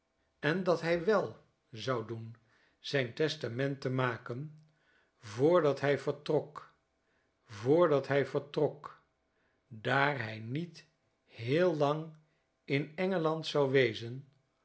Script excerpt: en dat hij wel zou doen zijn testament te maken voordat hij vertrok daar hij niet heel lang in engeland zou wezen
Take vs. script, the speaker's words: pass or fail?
fail